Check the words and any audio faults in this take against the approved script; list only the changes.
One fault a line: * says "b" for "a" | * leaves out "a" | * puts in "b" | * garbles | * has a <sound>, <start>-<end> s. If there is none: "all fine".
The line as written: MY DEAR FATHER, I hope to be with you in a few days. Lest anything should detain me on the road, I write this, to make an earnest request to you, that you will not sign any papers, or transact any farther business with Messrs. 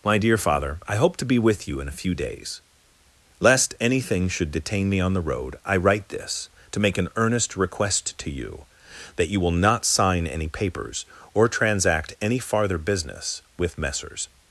all fine